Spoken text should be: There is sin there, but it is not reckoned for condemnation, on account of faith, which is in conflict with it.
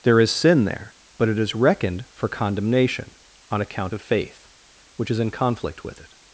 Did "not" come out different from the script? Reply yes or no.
yes